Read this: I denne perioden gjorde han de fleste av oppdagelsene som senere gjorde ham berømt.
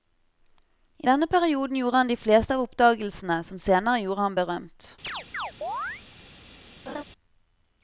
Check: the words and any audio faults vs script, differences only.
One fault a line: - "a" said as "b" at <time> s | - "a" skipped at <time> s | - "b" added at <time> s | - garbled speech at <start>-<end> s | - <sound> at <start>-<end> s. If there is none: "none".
- chirp at 5.0-6.0 s
- laugh at 6.9-7.0 s